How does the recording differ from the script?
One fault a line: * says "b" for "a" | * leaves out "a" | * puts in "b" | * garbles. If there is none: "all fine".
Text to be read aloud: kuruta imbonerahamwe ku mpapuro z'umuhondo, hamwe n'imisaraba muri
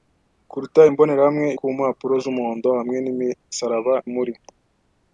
all fine